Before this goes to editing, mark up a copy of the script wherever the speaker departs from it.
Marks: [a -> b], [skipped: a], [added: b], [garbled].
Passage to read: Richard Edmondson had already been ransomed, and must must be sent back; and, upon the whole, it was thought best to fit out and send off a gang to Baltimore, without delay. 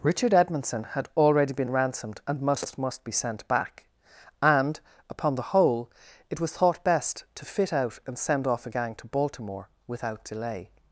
Richard Edmondson had already been ransomed, and must must be sent back; and, upon the whole, it was thought best to fit out and send off a gang to Baltimore, without delay.